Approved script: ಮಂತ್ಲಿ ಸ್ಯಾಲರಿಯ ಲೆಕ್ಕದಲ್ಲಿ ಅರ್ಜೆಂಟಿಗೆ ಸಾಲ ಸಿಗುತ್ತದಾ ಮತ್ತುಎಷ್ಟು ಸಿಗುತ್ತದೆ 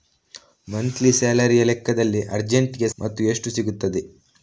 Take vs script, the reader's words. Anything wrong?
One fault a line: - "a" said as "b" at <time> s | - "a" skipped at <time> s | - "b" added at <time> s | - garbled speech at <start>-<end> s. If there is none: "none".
- "ಸಾಲ ಸಿಗುತ್ತದಾ" skipped at 2.9 s